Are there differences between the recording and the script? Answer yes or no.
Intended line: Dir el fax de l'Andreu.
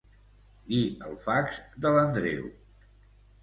no